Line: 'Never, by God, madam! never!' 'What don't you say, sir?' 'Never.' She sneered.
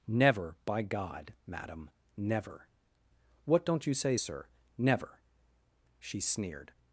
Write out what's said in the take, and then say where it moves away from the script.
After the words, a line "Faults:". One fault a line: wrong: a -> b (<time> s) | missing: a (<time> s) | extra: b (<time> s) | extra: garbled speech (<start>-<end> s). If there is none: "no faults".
'Never, by God, madam! never!' 'What don't you say, sir?' 'Never.' She sneered.
Faults:
no faults